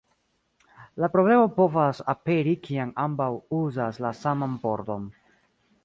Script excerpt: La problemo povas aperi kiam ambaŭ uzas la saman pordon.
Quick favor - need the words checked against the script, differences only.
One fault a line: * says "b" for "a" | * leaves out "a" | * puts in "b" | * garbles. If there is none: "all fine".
all fine